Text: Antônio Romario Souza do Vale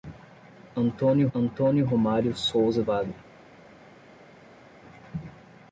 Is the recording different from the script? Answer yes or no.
yes